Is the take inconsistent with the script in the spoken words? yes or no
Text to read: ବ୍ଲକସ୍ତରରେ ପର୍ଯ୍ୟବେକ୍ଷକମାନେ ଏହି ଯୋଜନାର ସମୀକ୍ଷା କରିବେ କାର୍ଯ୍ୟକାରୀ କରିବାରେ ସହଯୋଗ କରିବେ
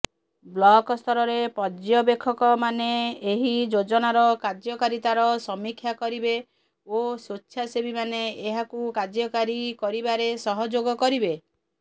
yes